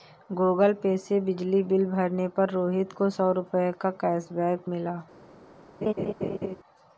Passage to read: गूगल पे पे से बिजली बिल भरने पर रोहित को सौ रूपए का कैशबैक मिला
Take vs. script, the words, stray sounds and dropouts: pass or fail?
fail